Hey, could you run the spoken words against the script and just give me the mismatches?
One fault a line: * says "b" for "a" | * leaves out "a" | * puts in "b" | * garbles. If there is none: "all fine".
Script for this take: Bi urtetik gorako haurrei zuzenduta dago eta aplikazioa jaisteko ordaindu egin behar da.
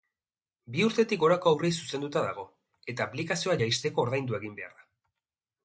all fine